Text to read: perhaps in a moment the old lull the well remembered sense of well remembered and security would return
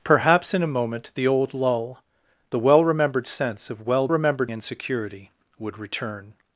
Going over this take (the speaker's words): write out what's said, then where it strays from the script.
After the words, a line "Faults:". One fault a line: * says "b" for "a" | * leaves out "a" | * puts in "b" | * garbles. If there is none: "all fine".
perhaps in a moment the old lull the well remembered sense of well remembered and security would return
Faults:
all fine